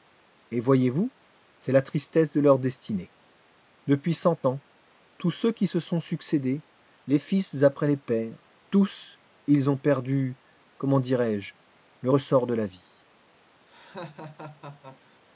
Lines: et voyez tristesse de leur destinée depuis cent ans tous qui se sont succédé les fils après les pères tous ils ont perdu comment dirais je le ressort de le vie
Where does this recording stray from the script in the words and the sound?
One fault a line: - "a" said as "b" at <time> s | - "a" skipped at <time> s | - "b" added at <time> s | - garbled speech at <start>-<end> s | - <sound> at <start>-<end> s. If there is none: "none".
- "vous c'est la" added at 0.9 s
- "ceux" added at 5.3 s
- "le" said as "la" at 12.5 s
- laugh at 13.7-15.2 s